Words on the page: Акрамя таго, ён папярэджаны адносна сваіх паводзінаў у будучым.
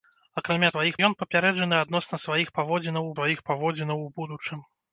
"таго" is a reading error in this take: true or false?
true